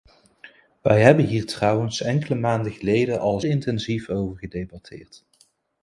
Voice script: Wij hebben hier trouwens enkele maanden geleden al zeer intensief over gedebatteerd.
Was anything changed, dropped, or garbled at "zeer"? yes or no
yes